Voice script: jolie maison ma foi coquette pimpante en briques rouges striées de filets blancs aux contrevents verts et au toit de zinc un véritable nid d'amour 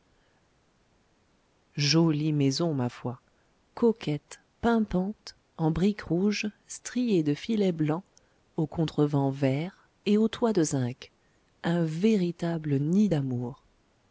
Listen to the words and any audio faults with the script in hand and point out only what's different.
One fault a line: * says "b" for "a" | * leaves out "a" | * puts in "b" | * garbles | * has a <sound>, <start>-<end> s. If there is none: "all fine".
all fine